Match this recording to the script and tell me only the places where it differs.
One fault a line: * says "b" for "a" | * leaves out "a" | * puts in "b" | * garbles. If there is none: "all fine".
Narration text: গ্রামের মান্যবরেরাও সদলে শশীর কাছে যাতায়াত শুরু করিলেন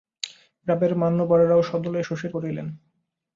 * leaves out "কাছে যাতায়াত শুরু"